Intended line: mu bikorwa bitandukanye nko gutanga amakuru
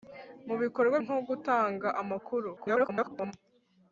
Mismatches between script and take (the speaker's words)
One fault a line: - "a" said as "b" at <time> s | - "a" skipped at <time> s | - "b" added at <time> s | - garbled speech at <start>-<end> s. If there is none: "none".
- "bitandukanye" skipped at 1.0 s
- garbled speech at 2.5-3.3 s